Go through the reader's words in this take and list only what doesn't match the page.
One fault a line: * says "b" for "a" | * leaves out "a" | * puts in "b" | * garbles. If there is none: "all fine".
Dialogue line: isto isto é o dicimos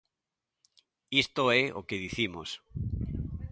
* leaves out "isto"
* puts in "que"